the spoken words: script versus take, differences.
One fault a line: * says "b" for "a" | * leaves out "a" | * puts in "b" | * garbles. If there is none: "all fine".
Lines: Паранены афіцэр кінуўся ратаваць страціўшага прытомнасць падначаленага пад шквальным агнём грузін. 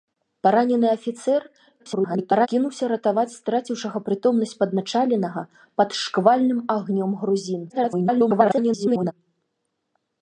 * garbles
* garbles